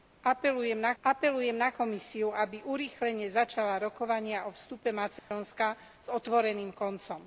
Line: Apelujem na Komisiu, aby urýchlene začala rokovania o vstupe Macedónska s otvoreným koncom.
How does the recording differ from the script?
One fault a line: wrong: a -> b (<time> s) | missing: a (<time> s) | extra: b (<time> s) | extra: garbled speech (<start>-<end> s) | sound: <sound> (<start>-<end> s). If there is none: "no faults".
extra: apelujem na (1.0 s)
sound: dropout (5.2-5.3 s)